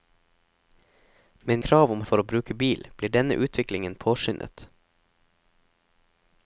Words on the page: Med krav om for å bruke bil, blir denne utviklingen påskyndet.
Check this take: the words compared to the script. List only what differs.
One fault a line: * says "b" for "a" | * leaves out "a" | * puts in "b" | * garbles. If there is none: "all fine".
all fine